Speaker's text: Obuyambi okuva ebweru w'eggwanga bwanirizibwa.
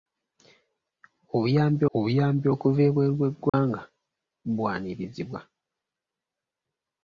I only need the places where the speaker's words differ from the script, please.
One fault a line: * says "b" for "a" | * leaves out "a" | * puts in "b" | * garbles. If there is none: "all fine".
* puts in "obuyambi"